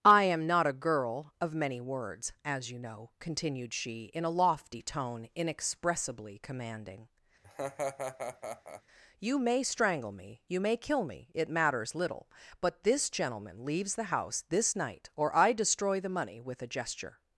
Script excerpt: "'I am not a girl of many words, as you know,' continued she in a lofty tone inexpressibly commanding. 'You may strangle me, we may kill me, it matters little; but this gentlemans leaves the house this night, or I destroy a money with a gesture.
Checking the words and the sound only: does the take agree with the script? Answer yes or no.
no